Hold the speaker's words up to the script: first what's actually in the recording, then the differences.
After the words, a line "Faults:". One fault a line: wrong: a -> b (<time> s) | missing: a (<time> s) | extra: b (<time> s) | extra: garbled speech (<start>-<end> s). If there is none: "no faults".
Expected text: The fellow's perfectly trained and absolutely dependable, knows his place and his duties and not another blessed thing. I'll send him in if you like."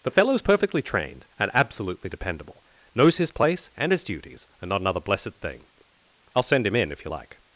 The fellow's perfectly trained and absolutely dependable, knows his place and his duties and not another blessed thing. I'll send him in if you like."
Faults:
no faults